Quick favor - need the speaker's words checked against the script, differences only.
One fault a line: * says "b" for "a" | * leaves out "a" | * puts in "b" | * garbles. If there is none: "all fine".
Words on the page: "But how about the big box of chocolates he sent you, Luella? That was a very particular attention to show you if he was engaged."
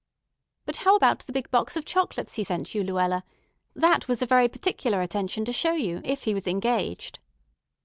all fine